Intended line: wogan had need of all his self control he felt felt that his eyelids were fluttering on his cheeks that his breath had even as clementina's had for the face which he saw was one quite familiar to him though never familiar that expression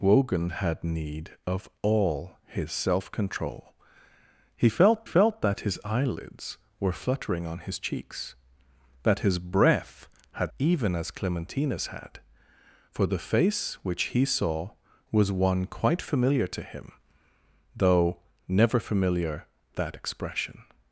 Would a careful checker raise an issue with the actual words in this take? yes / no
no